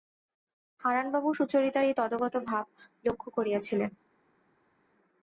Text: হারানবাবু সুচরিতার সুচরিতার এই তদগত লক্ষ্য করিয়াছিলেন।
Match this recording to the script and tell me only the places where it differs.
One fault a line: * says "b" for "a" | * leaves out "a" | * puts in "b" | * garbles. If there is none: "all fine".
* leaves out "সুচরিতার"
* puts in "ভাব"